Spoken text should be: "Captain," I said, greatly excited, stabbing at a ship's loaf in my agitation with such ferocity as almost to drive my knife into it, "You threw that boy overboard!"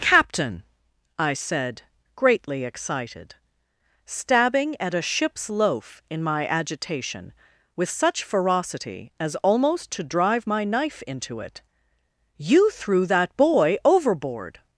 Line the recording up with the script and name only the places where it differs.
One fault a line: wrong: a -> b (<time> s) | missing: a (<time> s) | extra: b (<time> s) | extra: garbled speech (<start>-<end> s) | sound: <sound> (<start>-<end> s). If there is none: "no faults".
no faults